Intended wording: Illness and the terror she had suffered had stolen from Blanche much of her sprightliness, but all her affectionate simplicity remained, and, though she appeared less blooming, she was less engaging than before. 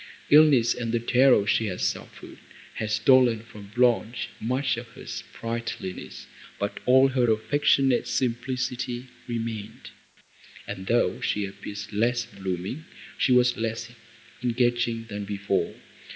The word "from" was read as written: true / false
true